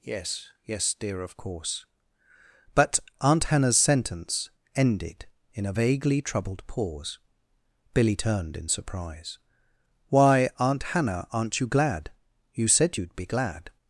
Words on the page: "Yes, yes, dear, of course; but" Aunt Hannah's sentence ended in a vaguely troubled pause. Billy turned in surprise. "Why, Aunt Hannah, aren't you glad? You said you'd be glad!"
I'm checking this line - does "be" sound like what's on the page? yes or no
yes